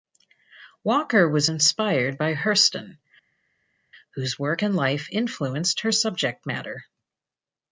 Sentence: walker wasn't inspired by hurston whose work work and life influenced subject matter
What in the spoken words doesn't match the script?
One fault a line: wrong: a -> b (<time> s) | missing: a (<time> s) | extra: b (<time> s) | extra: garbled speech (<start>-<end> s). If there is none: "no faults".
wrong: wasn't -> was (1.3 s)
missing: work (4.6 s)
extra: her (5.8 s)